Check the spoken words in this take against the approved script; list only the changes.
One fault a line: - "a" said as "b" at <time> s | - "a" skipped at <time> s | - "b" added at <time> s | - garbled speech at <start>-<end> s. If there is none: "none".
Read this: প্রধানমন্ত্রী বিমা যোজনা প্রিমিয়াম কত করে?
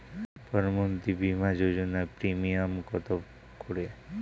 none